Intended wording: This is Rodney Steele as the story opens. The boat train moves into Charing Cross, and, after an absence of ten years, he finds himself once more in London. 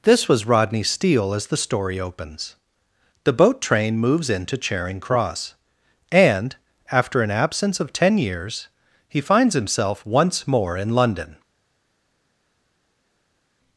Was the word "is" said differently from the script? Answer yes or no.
yes